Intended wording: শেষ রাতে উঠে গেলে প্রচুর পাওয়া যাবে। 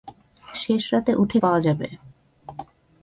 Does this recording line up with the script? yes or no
no